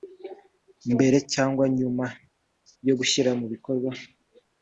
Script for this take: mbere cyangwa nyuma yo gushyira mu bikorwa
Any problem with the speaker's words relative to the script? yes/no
no